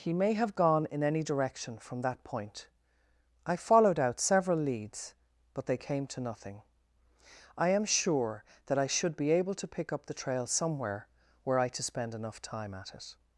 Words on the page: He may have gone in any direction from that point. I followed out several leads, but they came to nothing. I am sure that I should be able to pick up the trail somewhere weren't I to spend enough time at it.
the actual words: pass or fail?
fail